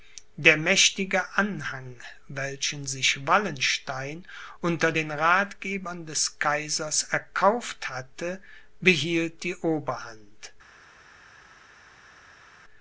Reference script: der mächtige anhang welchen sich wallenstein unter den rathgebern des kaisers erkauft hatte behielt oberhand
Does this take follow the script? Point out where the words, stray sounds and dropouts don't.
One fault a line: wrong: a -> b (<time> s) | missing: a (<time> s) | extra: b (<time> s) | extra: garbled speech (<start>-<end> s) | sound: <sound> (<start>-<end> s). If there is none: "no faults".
extra: die (9.4 s)